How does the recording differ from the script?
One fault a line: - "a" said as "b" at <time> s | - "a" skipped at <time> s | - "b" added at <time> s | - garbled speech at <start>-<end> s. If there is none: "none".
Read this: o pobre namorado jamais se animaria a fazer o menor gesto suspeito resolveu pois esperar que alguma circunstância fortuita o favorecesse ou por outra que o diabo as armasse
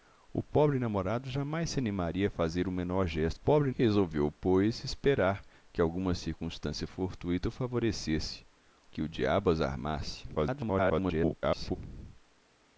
- "suspeito" said as "pobre" at 3.3 s
- "ou por outra" skipped at 8.5 s
- garbled speech at 10.3-11.8 s